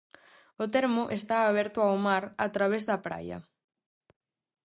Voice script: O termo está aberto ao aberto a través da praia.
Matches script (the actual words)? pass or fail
fail